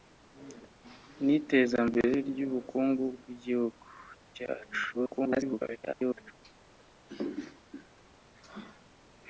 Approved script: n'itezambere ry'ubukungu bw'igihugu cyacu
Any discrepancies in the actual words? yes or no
yes